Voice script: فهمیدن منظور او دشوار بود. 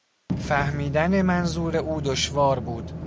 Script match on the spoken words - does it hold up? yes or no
yes